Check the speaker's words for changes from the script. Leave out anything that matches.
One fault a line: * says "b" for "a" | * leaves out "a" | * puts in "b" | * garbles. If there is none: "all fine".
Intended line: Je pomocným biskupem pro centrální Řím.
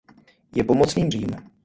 * leaves out "biskupem pro centrální"